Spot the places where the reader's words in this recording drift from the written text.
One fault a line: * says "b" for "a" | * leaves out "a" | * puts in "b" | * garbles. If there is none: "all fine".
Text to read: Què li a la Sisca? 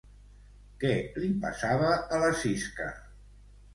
* puts in "passava"